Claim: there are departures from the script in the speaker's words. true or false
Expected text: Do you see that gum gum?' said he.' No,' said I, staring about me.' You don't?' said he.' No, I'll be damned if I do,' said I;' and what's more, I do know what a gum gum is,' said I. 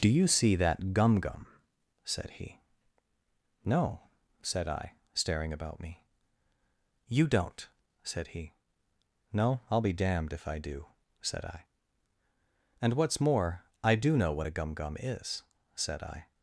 false